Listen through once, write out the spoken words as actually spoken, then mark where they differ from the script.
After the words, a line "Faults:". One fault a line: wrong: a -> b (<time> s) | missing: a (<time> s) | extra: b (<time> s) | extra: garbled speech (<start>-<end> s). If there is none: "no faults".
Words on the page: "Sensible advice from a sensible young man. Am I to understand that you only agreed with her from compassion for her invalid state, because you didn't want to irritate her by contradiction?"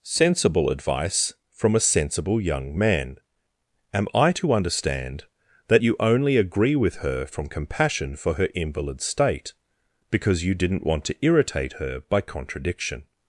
"Sensible advice from a sensible young man. Am I to understand that you only agree with her from compassion for her invalid state, because you didn't want to irritate her by contradiction?"
Faults:
wrong: agreed -> agree (6.4 s)